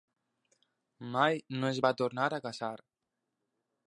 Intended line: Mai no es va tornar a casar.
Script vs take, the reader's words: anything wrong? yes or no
no